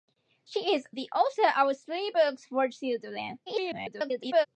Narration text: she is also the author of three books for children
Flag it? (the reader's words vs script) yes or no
yes